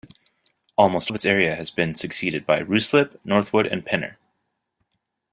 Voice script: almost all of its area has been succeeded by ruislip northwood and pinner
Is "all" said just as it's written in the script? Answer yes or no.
no